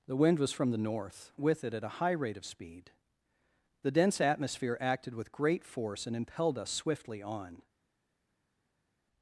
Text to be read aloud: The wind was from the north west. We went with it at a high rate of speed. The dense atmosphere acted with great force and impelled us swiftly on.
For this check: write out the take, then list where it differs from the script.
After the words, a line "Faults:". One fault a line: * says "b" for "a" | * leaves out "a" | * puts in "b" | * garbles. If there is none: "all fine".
The wind was from the north with it at a high rate of speed. The dense atmosphere acted with great force and impelled us swiftly on.
Faults:
* leaves out "west We went"